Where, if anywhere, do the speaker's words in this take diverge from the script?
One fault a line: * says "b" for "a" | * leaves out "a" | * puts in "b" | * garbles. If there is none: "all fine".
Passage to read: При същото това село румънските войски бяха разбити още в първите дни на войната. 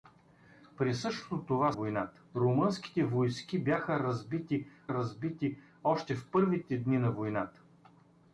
* says "войната" for "село"
* puts in "разбити"